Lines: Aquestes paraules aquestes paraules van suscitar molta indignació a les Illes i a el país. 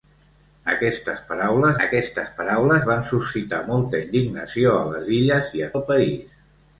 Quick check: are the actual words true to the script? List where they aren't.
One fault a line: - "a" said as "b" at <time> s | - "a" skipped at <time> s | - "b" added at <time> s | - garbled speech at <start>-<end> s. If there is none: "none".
none